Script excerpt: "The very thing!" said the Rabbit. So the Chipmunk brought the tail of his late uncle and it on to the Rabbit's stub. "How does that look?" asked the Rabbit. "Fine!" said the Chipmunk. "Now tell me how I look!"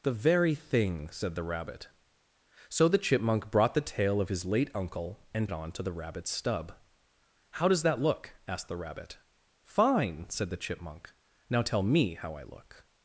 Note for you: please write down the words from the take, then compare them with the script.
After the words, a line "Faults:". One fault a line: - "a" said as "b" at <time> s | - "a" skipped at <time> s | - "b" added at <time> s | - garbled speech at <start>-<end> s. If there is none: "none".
"The very thing!" said the Rabbit. So the Chipmunk brought the tail of his late uncle and it on to the Rabbit's stub. "How does that look?" asked the Rabbit. "Fine!" said the Chipmunk. "Now tell me how I look!"
Faults:
none